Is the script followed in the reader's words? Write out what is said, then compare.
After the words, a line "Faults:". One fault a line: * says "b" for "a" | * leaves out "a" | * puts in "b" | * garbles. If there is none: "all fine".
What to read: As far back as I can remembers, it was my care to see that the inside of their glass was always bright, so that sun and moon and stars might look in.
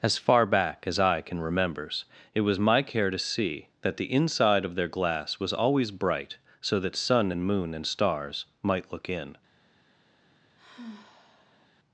As far back as I can remembers, it was my care to see that the inside of their glass was always bright, so that sun and moon and stars might look in.
Faults:
all fine